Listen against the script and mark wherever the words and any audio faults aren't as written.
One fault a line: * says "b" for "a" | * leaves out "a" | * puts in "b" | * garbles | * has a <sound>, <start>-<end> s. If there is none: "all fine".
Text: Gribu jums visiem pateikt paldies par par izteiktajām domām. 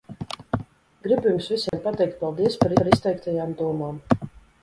* has a dropout, 1.7-1.7 s